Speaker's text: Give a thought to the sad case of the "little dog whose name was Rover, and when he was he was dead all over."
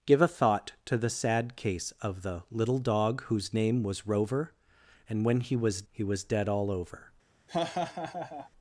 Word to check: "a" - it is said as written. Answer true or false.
true